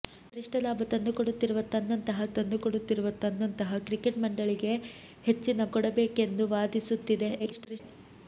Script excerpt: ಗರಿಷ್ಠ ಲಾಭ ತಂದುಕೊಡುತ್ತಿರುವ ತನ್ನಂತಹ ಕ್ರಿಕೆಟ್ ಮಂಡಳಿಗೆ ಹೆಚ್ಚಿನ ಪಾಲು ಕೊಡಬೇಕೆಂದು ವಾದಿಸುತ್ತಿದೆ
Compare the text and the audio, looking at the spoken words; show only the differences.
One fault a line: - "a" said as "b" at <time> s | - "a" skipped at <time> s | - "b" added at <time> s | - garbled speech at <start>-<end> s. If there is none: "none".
- "ತಂದುಕೊಡುತ್ತಿರುವ ತನ್ನಂತಹ" added at 2.4 s
- "ಪಾಲು" skipped at 5.7 s
- garbled speech at 7.4-7.8 s